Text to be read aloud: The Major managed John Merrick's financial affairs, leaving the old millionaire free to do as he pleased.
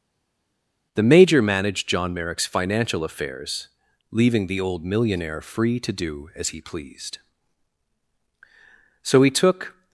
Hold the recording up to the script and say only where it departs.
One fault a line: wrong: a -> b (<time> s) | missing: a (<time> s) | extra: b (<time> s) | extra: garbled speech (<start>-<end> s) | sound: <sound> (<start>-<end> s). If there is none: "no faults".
extra: So he took (9.0 s)